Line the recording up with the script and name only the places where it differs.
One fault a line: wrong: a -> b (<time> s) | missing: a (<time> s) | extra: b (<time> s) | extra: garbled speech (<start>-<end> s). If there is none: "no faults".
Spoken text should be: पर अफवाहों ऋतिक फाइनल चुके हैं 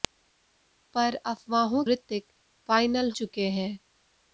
no faults